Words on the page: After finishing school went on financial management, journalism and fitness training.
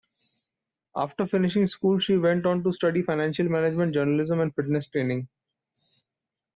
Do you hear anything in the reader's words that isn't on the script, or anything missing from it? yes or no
yes